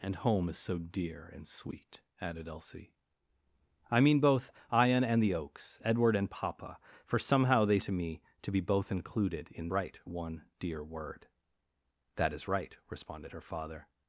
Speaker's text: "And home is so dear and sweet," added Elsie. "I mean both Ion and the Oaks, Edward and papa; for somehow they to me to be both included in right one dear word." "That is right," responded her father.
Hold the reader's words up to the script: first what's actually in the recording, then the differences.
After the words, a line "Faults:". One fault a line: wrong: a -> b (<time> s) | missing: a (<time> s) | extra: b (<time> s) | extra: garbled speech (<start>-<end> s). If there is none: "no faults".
"And home is so dear and sweet," added Elsie. "I mean both Ion and the Oaks, Edward and papa; for somehow they to me to be both included in right one dear word." "That is right," responded her father.
Faults:
no faults